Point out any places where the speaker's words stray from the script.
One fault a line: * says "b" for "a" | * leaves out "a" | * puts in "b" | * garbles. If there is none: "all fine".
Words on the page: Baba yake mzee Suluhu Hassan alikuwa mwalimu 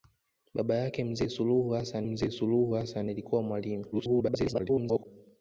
* puts in "mzee Suluhu Hassan"
* garbles